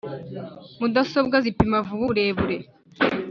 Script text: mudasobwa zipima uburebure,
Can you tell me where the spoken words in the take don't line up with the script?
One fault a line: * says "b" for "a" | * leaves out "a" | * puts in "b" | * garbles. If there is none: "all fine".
* puts in "vuba"